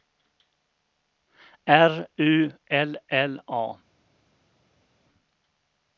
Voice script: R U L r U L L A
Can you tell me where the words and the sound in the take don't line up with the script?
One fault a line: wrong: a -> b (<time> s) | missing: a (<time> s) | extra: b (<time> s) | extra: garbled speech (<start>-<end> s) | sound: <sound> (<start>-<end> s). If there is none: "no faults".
missing: r U L (2.9 s)